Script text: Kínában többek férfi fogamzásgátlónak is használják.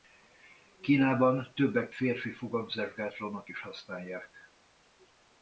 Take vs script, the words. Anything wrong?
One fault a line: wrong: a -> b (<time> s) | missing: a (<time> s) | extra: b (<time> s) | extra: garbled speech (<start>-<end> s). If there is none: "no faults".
no faults